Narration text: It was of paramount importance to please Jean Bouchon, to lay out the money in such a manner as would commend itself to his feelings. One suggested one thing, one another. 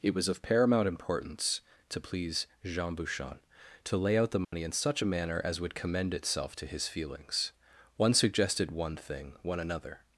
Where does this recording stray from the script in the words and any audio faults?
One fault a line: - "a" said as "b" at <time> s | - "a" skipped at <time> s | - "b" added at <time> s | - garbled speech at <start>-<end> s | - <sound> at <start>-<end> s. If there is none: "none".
- dropout at 4.4-4.5 s